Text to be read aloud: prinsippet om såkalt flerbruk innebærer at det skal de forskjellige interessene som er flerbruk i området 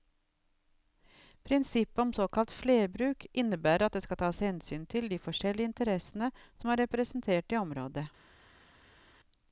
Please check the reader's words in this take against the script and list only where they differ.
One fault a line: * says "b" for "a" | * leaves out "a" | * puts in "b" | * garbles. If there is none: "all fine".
* puts in "tas hensyn til"
* says "representert" for "flerbruk"